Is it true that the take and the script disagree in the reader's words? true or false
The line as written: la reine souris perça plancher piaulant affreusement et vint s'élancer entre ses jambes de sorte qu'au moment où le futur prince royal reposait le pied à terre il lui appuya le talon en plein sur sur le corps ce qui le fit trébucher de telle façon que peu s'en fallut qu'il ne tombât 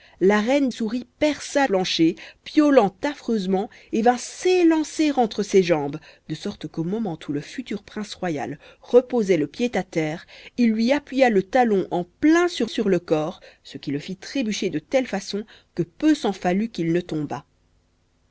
false